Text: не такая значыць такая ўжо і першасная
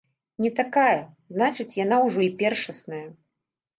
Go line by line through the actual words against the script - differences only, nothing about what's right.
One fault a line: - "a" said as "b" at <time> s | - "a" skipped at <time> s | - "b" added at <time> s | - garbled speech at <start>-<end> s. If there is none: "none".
- "такая" said as "яна" at 1.8 s